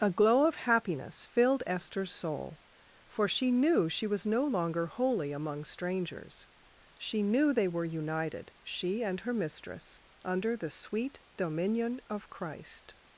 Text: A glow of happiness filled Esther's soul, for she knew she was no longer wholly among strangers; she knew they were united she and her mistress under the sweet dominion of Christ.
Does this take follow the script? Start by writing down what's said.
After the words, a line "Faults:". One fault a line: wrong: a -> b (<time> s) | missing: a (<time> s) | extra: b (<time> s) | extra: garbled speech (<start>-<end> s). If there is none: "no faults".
A glow of happiness filled Esther's soul, for she knew she was no longer wholly among strangers; she knew they were united she and her mistress under the sweet dominion of Christ.
Faults:
no faults